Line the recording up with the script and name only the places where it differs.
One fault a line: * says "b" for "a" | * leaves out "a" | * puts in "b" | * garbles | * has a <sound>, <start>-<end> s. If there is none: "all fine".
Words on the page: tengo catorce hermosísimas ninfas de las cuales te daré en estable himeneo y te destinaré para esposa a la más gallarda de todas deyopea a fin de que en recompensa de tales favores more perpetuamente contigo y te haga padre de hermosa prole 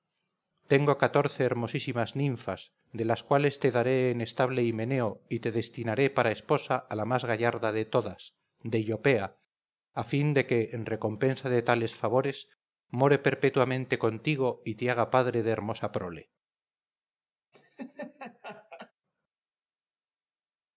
* has a laugh, 17.5-18.9 s